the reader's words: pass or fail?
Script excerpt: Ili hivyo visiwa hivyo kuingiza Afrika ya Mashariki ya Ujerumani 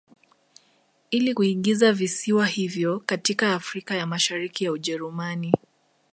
fail